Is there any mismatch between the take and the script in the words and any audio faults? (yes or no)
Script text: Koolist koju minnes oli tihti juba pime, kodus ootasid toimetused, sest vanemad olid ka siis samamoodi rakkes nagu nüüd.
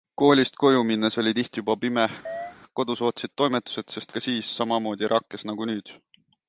yes